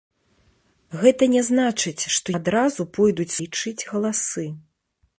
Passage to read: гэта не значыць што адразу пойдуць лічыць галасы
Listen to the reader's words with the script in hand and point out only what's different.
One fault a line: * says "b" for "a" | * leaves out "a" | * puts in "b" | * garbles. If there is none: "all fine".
all fine